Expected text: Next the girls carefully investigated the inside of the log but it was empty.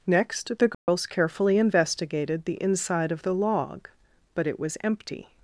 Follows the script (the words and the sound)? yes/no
no